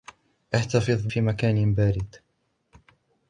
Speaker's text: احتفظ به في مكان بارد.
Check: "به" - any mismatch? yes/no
yes